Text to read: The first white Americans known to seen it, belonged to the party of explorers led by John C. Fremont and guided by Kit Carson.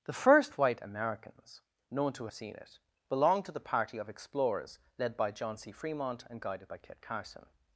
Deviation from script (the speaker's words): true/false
false